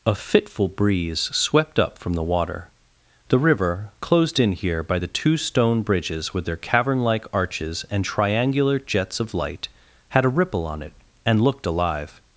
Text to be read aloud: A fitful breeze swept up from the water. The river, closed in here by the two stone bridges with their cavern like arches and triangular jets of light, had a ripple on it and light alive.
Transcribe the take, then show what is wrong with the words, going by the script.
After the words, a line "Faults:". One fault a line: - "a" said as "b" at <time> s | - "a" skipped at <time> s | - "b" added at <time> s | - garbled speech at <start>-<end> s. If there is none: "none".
A fitful breeze swept up from the water. The river, closed in here by the two stone bridges with their cavern like arches and triangular jets of light, had a ripple on it and looked alive.
Faults:
- "light" said as "looked" at 11.4 s